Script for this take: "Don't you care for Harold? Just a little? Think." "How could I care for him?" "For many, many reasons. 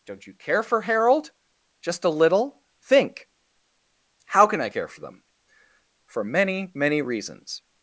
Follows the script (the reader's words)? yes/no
no